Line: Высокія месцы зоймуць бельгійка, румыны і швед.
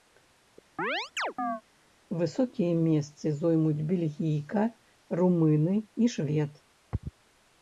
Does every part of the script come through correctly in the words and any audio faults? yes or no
no